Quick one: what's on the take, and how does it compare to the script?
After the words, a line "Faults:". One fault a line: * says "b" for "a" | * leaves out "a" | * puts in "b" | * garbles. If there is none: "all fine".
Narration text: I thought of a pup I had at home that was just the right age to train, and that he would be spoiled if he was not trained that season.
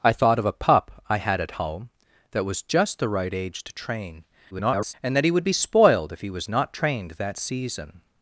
I thought of a pup I had at home that was just the right age to train, [garbled] and that he would be spoiled if he was not trained that season.
Faults:
* garbles